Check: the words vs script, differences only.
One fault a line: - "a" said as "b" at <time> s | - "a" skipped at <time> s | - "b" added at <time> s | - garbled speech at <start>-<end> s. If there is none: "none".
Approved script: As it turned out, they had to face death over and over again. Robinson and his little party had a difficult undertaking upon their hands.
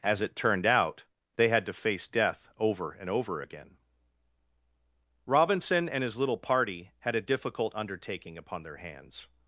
none